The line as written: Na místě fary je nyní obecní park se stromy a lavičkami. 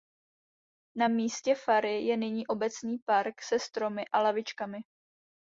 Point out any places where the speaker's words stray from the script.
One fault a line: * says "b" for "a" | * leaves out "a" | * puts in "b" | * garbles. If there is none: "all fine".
all fine